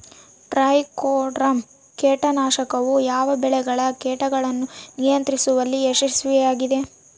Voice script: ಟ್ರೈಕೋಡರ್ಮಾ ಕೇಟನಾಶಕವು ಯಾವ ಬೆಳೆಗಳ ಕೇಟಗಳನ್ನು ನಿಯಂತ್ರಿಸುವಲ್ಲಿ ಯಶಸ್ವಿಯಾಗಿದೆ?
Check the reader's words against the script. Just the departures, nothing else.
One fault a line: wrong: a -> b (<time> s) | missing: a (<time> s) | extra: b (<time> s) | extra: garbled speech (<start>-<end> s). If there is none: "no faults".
no faults